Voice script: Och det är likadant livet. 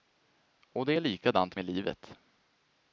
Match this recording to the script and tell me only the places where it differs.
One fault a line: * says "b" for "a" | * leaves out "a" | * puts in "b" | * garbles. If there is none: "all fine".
* puts in "med"